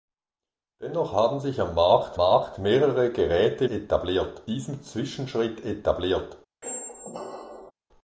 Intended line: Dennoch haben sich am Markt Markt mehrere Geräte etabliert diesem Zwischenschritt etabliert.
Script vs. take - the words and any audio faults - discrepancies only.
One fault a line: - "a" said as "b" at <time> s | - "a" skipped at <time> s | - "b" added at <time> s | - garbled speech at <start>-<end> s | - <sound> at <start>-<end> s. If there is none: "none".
- squeak at 6.6-7.7 s